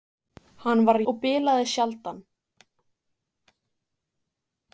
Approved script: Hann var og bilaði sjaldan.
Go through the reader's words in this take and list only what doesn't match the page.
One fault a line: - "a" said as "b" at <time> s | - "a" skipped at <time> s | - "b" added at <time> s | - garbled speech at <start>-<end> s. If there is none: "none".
none